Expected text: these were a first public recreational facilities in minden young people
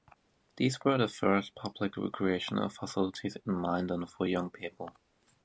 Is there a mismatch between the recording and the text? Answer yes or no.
yes